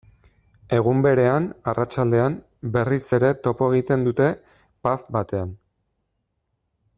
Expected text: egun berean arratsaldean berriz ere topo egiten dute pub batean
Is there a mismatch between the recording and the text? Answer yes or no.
no